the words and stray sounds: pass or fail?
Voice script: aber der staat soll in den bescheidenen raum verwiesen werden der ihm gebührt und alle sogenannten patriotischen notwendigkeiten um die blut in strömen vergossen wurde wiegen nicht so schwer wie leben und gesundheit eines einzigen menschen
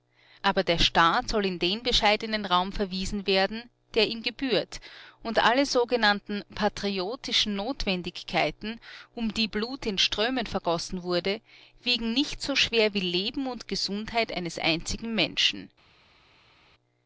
pass